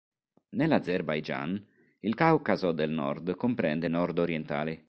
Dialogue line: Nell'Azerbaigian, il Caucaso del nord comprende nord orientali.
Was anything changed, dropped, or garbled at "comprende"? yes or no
no